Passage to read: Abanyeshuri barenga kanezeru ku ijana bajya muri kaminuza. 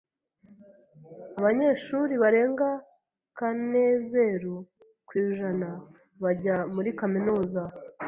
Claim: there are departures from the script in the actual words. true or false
false